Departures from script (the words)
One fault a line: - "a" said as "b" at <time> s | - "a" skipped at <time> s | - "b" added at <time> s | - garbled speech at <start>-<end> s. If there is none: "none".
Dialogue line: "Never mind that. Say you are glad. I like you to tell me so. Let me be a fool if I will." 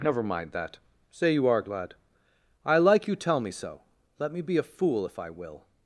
- "to" skipped at 3.1 s